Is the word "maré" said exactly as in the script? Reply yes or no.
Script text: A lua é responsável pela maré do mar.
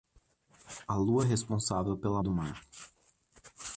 no